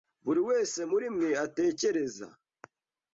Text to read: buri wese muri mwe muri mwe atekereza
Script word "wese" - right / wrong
right